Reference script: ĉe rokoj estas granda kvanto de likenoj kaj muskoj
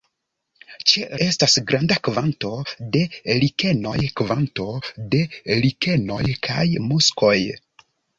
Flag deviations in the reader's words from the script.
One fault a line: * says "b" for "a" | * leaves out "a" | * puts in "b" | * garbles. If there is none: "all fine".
* leaves out "rokoj"
* puts in "kvanto de likenoj"